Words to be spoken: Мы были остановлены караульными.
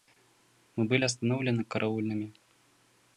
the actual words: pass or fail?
pass